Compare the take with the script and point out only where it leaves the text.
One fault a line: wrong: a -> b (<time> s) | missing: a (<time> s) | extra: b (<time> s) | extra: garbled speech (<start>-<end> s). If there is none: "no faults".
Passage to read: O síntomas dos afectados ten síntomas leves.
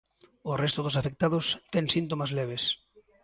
wrong: síntomas -> resto (0.6 s)